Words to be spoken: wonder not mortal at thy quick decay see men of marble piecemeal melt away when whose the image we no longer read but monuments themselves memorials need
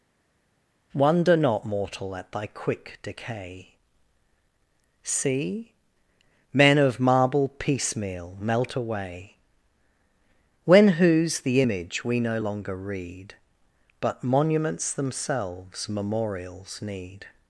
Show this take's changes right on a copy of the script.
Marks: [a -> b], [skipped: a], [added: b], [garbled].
wonder not mortal at thy quick decay see men of marble piecemeal melt away when whose the image we no longer read but monuments themselves memorials need